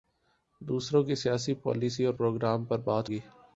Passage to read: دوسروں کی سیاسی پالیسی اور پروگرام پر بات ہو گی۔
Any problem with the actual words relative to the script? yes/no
yes